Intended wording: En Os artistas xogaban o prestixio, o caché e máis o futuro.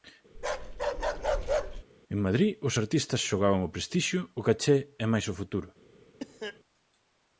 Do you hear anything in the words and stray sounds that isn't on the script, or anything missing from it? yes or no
yes